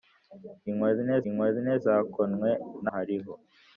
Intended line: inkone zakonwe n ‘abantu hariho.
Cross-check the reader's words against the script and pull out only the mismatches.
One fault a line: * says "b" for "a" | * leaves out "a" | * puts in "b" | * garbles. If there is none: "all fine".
* puts in "inkone"
* leaves out "abantu"